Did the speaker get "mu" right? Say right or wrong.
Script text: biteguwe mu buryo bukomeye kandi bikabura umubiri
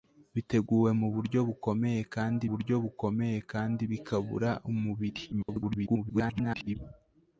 right